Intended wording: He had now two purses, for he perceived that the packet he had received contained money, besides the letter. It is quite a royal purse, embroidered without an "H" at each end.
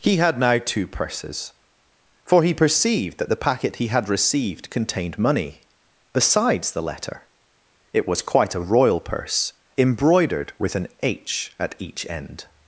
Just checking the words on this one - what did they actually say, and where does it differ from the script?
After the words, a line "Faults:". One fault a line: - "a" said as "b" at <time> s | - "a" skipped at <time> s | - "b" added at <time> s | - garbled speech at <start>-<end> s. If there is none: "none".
He had now two purses, for he perceived that the packet he had received contained money, besides the letter. It was quite a royal purse, embroidered with an "H" at each end.
Faults:
- "is" said as "was" at 8.1 s
- "without" said as "with" at 10.6 s